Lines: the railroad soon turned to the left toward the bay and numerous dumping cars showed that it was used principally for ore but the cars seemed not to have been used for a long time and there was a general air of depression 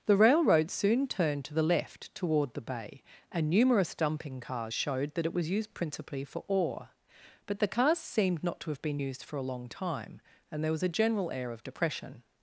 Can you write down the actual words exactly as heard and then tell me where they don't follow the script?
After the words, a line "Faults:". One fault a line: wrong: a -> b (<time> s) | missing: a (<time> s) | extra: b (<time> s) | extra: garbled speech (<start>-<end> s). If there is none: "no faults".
the railroad soon turned to the left toward the bay and numerous dumping cars showed that it was used principally for ore but the cars seemed not to have been used for a long time and there was a general air of depression
Faults:
no faults